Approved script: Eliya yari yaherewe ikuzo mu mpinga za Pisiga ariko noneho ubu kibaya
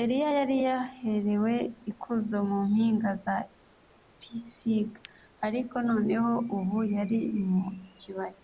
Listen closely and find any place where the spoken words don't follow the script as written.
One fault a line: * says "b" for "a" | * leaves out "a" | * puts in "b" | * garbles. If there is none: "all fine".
* puts in "yari mu"